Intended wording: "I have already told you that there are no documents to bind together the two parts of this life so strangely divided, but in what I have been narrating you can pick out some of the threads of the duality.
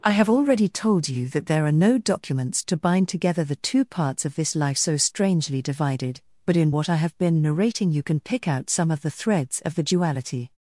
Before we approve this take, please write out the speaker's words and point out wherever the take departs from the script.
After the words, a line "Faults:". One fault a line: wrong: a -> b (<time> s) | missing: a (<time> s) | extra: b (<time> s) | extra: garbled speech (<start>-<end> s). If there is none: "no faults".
"I have already told you that there are no documents to bind together the two parts of this life so strangely divided, but in what I have been narrating you can pick out some of the threads of the duality.
Faults:
no faults